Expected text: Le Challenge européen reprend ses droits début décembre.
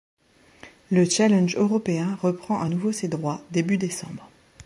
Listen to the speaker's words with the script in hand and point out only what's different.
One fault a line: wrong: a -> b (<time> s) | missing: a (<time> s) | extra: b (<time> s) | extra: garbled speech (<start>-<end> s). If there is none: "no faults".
extra: à nouveau (2.6 s)